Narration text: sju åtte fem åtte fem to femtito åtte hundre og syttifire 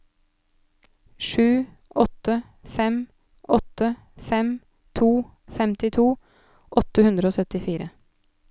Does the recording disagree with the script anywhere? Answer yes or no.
no